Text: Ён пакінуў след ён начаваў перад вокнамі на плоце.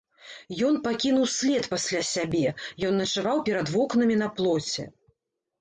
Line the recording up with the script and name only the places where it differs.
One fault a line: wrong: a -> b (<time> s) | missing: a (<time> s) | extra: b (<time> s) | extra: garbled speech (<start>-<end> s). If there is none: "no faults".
extra: пасля сябе (1.7 s)